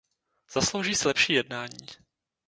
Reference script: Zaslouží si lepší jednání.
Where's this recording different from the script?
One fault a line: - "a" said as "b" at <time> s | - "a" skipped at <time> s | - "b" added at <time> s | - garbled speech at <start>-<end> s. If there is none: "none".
none